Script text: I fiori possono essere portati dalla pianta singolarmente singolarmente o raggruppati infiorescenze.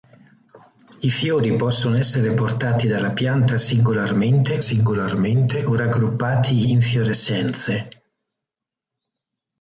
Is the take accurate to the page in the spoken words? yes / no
yes